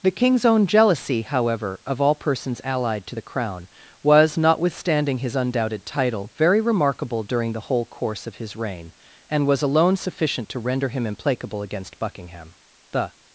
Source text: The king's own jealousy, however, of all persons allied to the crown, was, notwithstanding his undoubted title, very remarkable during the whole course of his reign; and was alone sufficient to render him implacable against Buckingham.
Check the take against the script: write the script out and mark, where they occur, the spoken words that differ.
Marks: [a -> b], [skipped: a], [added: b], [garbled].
The king's own jealousy, however, of all persons allied to the crown, was, notwithstanding his undoubted title, very remarkable during the whole course of his reign; and was alone sufficient to render him implacable against Buckingham. [added: The]